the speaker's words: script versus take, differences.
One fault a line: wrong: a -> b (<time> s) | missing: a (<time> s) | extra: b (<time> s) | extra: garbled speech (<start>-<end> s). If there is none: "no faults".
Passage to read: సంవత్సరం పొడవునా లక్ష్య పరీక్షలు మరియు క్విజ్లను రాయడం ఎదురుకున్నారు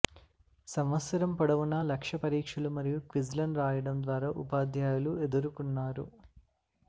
extra: ద్వారా ఉపాధ్యాయులు (4.0 s)